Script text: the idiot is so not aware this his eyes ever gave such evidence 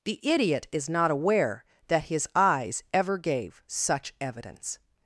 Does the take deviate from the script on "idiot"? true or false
false